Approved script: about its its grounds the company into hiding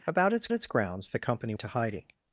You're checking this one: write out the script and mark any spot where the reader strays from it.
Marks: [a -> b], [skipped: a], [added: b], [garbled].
about its its grounds the company into hiding